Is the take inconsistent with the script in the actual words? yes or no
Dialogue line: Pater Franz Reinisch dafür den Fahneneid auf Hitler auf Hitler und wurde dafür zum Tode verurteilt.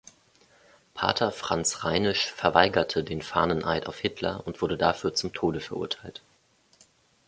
yes